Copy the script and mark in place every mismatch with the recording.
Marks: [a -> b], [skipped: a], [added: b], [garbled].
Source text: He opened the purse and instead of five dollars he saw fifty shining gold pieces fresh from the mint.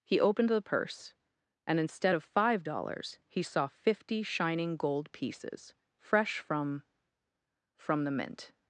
He opened the purse and instead of five dollars he saw fifty shining gold pieces fresh from [added: from] the mint.